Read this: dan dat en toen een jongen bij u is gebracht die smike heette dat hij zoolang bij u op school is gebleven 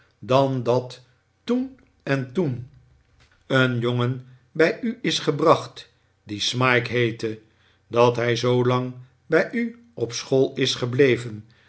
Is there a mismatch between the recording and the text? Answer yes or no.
yes